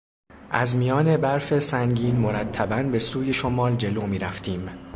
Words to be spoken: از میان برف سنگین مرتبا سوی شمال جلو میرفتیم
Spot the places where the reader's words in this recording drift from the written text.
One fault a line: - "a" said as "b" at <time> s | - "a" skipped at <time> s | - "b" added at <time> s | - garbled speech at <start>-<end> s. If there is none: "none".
- "به" added at 2.8 s